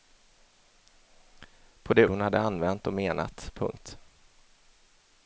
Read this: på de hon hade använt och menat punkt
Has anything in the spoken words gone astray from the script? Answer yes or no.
no